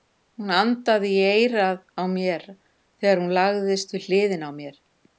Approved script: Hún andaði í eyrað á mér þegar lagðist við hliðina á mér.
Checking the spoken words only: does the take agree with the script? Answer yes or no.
no